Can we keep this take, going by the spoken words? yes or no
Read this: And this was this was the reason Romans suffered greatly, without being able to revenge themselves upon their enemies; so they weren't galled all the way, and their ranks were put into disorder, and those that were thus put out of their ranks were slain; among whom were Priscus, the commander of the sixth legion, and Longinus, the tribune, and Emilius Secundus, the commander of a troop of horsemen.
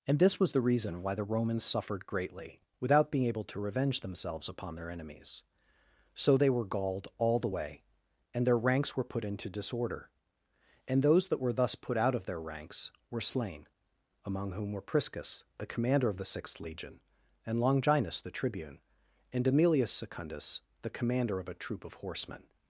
no